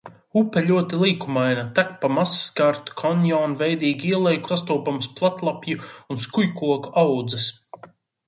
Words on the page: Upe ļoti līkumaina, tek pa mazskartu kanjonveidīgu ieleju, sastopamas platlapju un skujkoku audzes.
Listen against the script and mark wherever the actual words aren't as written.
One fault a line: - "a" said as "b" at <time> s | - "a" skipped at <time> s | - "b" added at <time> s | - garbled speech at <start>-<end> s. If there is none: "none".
none